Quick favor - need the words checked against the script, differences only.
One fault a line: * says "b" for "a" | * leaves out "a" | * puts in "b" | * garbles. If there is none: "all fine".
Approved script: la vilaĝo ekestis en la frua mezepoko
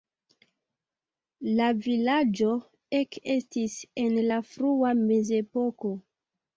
all fine